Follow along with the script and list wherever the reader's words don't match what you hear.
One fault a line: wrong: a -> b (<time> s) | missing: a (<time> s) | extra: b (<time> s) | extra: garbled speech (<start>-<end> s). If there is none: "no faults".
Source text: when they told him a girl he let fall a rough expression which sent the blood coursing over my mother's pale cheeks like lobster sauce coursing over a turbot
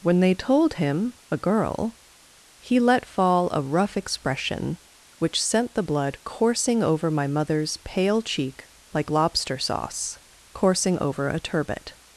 wrong: cheeks -> cheek (8.2 s)